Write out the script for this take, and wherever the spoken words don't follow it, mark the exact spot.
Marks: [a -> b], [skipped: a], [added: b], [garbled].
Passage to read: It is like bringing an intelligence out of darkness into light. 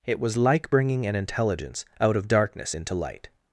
It [is -> was] like bringing an intelligence out of darkness into light.